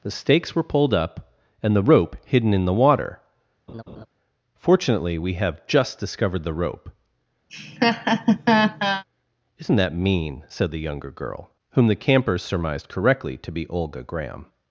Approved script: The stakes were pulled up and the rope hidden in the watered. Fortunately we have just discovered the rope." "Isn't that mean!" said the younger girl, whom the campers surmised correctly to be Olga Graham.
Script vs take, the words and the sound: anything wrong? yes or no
yes